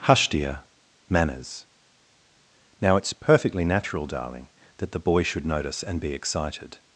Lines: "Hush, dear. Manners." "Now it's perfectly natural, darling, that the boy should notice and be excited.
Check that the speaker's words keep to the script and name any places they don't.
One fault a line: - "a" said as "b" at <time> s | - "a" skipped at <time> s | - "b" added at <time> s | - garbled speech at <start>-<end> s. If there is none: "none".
none